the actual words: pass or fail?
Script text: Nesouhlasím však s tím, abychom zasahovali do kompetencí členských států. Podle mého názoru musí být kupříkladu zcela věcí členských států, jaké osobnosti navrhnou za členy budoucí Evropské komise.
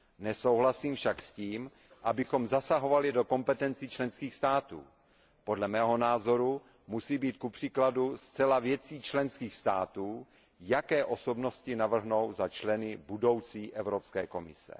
pass